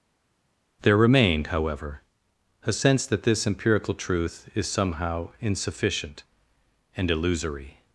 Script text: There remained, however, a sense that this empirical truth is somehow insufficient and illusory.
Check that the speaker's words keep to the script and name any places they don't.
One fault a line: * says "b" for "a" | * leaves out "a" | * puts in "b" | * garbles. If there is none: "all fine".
all fine